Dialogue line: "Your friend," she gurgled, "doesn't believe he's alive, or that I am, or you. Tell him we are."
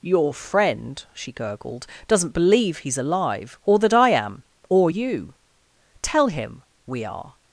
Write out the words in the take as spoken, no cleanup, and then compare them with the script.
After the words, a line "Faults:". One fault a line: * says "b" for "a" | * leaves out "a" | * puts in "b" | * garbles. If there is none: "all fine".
"Your friend," she gurgled, "doesn't believe he's alive, or that I am, or you. Tell him we are."
Faults:
all fine